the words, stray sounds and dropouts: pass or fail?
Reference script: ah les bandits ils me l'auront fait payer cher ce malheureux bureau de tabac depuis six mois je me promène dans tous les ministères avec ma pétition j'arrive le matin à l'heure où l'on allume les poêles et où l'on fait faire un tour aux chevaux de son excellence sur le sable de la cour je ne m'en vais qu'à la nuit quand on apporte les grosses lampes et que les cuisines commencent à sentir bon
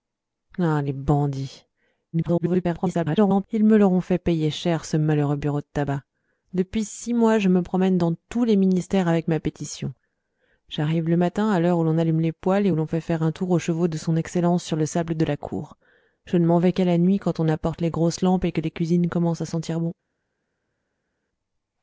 fail